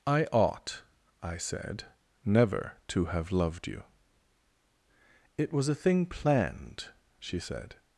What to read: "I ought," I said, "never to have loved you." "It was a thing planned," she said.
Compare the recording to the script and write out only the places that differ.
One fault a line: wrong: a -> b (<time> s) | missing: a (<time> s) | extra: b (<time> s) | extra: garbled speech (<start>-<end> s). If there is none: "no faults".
no faults